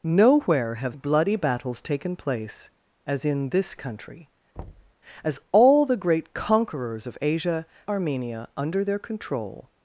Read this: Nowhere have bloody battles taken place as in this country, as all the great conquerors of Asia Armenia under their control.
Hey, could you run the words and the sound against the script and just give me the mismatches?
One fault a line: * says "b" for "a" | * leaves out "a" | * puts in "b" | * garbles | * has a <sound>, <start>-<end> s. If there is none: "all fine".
* has a thud, 4.6-4.9 s